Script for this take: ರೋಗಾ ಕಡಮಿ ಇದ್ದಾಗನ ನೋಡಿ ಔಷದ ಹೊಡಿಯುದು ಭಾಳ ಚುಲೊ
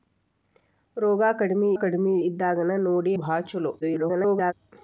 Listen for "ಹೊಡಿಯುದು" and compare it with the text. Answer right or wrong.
wrong